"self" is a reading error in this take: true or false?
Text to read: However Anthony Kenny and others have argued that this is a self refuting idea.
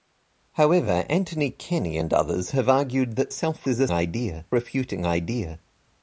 true